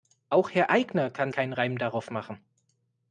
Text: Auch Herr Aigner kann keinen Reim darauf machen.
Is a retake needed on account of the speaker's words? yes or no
no